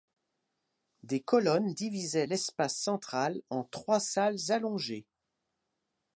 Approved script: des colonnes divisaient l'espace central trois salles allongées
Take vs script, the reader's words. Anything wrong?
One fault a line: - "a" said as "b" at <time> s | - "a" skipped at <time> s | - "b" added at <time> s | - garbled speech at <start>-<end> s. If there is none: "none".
- "en" added at 3.5 s